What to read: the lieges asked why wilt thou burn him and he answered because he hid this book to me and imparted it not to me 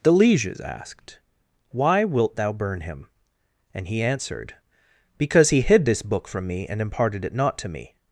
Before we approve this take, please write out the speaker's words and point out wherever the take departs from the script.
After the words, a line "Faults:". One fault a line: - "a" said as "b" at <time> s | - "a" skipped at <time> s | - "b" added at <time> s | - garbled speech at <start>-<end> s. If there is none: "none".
the lieges asked why wilt thou burn him and he answered because he hid this book from me and imparted it not to me
Faults:
- "to" said as "from" at 6.3 s